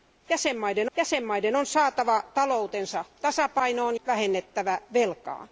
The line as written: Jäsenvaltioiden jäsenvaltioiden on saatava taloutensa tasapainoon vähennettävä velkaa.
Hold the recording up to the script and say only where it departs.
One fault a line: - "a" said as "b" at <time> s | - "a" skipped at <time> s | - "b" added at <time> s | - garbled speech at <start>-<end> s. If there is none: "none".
none